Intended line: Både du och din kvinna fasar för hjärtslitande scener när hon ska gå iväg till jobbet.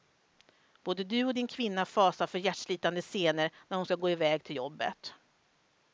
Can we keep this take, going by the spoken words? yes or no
yes